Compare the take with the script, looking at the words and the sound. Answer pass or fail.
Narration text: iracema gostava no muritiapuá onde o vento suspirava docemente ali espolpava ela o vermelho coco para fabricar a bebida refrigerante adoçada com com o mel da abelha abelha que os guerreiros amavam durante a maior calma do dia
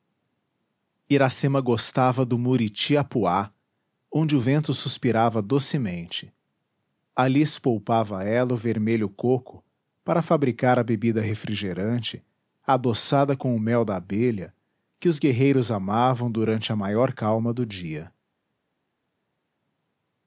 fail